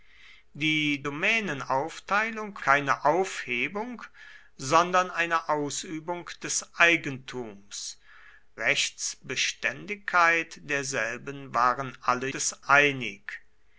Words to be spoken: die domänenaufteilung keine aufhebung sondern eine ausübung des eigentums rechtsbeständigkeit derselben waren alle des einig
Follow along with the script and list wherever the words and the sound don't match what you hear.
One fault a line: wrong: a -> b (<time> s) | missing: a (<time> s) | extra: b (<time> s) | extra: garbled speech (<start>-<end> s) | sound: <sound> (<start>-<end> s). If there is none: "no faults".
no faults